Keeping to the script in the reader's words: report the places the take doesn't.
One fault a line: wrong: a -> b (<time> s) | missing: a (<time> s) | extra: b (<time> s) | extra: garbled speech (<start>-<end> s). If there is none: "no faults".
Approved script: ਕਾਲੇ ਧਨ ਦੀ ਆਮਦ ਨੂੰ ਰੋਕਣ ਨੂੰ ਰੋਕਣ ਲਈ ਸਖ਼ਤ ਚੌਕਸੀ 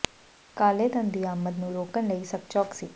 missing: ਨੂੰ ਰੋਕਣ (2.1 s)